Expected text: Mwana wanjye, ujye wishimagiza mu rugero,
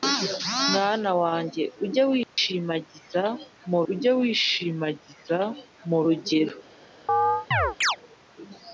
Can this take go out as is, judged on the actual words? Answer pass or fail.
fail